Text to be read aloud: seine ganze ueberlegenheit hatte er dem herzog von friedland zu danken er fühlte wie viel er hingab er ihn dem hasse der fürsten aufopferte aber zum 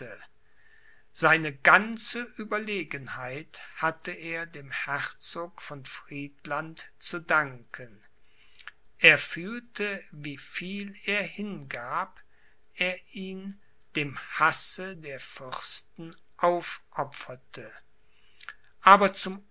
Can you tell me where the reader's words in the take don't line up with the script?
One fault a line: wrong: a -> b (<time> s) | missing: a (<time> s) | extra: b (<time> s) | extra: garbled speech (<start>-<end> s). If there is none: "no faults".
no faults